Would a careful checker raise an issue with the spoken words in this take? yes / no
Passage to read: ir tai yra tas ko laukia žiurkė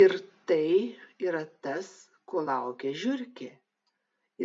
no